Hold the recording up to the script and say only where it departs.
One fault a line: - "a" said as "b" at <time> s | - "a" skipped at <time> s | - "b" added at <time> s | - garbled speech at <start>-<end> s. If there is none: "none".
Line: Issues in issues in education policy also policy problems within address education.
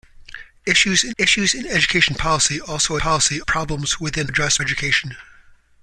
none